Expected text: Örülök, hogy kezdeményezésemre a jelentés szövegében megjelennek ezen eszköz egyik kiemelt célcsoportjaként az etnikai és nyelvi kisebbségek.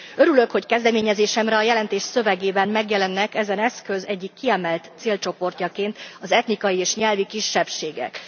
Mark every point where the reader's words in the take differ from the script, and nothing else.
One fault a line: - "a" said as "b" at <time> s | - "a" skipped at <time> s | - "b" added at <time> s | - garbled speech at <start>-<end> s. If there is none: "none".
none